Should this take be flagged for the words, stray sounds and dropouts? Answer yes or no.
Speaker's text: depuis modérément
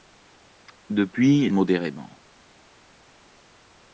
no